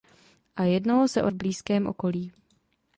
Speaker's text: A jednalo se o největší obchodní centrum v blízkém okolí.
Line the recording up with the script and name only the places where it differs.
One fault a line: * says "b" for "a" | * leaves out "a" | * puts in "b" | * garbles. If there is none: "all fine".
* leaves out "největší obchodní centrum"